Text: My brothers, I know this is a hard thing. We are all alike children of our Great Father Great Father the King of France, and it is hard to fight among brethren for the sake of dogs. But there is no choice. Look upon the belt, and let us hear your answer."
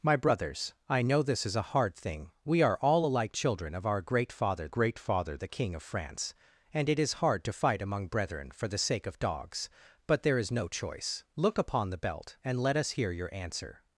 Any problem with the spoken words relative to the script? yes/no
no